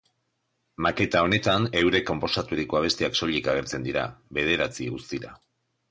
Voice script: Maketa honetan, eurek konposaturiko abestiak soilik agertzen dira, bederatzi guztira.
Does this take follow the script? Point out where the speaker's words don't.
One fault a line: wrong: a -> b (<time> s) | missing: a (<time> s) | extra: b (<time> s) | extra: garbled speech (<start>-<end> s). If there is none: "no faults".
no faults